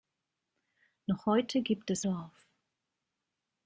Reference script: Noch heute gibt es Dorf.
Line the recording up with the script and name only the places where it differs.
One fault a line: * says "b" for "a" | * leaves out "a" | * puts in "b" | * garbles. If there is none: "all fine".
all fine